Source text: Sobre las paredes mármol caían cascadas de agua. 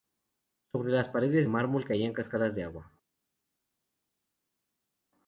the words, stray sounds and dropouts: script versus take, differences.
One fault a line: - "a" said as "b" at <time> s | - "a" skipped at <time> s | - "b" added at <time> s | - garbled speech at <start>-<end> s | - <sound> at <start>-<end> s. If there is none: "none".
none